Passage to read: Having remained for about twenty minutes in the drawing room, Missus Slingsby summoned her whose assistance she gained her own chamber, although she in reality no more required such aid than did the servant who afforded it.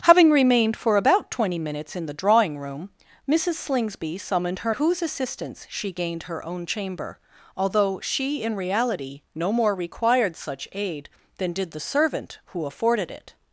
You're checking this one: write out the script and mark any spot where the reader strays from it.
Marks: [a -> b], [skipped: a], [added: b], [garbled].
Having remained for about twenty minutes in the drawing room, Missus Slingsby summoned her whose assistance she gained her own chamber, although she in reality no more required such aid than did the servant who afforded it.